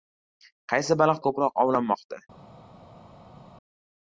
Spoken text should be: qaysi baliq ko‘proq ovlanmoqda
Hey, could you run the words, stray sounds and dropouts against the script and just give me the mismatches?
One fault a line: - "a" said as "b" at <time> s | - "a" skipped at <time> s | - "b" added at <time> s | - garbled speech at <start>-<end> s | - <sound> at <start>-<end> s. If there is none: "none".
none